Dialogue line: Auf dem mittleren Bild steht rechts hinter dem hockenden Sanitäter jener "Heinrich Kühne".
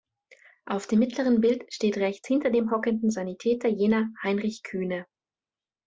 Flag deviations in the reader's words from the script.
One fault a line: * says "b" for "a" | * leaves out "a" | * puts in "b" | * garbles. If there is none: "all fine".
all fine